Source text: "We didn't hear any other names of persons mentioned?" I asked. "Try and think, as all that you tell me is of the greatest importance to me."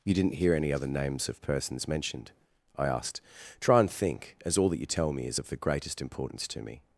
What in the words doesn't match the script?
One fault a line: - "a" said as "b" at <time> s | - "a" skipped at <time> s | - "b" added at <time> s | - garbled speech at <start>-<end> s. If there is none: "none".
- "We" said as "You" at 0.0 s